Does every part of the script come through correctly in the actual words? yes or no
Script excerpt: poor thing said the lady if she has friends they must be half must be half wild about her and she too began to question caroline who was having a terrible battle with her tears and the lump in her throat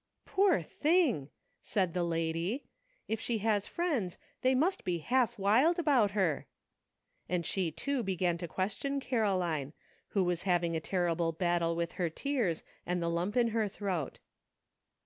no